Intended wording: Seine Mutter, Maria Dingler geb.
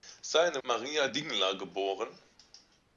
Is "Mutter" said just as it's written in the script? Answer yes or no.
no